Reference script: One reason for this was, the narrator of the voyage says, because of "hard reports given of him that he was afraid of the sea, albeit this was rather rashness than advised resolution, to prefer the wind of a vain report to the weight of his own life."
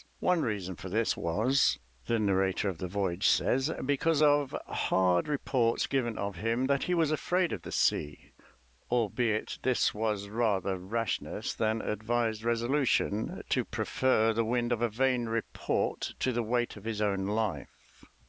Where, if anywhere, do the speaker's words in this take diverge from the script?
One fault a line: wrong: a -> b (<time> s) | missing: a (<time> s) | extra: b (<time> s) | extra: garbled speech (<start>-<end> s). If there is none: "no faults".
no faults